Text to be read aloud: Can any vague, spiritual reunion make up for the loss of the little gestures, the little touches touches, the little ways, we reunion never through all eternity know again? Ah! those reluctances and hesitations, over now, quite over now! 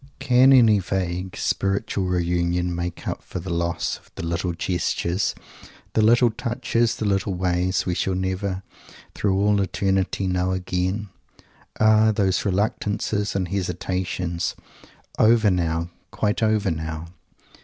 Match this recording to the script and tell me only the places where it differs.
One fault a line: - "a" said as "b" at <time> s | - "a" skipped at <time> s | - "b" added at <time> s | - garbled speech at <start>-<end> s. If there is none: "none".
- "touches" skipped at 7.0 s
- "reunion" said as "shall" at 7.9 s